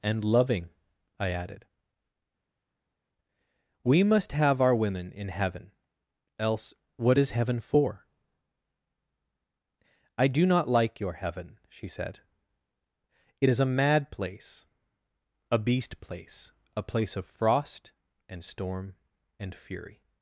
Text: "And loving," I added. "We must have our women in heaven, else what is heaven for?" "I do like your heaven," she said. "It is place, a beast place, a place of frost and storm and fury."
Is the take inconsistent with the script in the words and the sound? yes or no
yes